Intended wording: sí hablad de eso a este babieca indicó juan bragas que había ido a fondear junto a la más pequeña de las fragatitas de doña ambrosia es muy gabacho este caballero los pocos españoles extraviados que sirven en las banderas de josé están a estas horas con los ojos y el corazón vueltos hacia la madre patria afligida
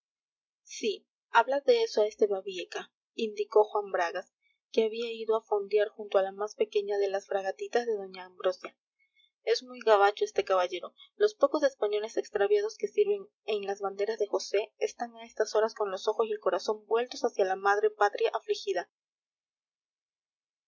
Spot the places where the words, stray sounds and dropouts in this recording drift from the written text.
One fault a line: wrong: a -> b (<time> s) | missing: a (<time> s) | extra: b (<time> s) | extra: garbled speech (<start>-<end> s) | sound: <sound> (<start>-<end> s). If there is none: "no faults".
no faults